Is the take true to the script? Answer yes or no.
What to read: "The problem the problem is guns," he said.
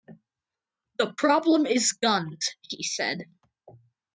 no